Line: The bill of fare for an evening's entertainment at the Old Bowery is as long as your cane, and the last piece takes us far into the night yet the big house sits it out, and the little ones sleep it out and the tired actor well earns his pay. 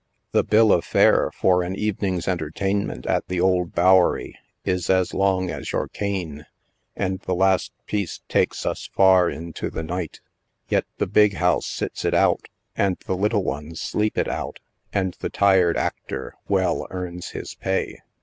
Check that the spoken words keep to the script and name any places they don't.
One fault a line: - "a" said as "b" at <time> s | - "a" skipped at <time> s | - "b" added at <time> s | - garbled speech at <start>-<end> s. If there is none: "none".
none